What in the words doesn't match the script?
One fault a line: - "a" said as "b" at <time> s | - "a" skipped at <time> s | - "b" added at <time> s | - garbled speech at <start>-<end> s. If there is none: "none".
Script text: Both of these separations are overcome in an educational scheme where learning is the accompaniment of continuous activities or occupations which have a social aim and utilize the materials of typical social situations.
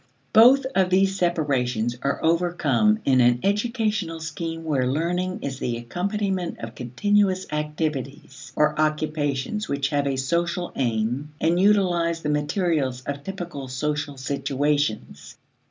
none